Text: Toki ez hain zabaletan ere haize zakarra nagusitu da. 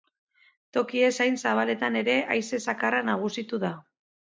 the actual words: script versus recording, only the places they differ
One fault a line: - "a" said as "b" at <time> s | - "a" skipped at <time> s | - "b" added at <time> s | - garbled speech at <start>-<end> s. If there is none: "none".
none